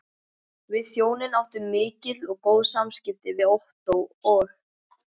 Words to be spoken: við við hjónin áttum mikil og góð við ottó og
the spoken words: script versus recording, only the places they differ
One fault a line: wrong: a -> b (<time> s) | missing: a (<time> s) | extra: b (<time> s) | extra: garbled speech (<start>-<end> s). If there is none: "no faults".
missing: við (0.9 s)
extra: samskipti (2.7 s)